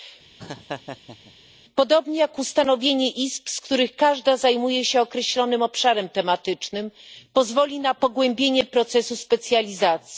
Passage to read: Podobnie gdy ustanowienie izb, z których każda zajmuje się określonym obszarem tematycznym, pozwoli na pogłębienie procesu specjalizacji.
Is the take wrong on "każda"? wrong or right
right